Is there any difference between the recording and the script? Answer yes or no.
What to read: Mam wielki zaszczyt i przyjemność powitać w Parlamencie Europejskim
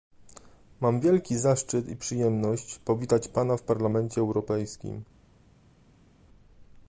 yes